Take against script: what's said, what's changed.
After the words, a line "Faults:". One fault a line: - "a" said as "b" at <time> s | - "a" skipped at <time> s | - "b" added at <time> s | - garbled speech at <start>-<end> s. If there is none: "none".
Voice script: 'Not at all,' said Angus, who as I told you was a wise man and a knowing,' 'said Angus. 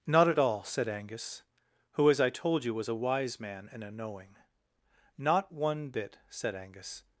'Not at all,' said Angus, who as I told you was a wise man and a knowing; 'not one bit,' said Angus.
Faults:
- "not one bit" added at 5.2 s